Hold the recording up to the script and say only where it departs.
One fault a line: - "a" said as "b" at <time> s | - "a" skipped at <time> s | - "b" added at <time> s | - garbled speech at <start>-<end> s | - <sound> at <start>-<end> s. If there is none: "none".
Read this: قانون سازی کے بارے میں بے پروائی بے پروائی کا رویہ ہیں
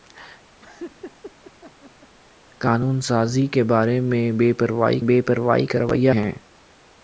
- laugh at 0.6-2.1 s